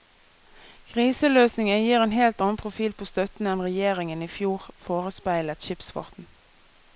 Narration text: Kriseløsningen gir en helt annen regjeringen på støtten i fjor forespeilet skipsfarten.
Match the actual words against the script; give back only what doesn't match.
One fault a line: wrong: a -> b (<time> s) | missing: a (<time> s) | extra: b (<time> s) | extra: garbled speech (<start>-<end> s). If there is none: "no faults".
wrong: regjeringen -> profil (2.6 s)
extra: enn regjeringen (3.5 s)